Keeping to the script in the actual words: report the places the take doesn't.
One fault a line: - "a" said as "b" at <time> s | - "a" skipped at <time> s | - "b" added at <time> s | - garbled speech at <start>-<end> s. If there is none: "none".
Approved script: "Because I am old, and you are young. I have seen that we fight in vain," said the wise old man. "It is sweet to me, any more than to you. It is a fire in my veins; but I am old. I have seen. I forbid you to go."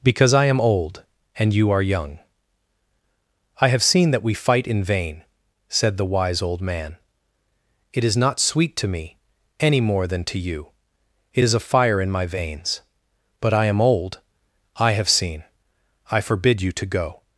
- "not" added at 8.2 s